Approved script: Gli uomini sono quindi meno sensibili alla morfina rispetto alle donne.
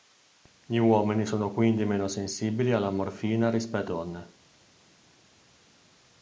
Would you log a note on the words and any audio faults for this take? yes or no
yes